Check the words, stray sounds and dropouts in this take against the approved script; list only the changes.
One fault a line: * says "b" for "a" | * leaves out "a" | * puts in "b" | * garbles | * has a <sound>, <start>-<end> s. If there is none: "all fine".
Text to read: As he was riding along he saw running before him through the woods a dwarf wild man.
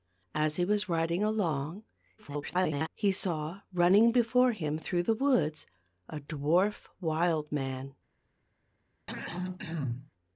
* garbles
* has a throat clearing, 9.1-10.1 s